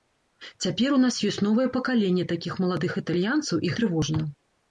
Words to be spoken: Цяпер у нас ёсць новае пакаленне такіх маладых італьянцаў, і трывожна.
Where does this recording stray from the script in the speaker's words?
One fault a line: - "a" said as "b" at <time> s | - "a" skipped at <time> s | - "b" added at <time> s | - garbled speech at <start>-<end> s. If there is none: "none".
none